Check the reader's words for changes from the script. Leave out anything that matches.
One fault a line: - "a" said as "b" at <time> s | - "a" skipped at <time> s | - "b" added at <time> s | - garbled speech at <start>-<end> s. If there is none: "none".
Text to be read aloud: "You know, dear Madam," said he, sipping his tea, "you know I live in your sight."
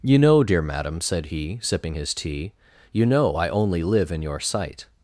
- "only" added at 3.5 s